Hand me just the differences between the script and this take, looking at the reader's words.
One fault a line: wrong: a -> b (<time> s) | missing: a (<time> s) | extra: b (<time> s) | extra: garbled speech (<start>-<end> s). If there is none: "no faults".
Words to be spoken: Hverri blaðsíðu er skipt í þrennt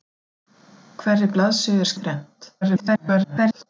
missing: skipt (1.9 s)
extra: garbled speech (2.6-3.7 s)